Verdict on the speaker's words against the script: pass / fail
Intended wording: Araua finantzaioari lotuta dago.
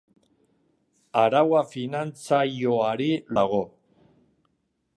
fail